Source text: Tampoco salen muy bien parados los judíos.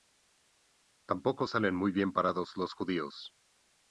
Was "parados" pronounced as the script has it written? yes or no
yes